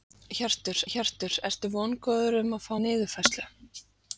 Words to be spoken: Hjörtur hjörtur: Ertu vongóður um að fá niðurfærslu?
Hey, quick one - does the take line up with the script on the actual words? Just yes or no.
yes